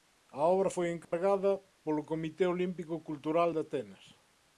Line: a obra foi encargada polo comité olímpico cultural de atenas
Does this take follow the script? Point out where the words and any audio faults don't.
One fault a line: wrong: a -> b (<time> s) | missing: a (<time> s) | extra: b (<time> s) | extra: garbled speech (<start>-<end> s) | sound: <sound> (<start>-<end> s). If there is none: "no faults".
sound: dropout (1.0-1.1 s)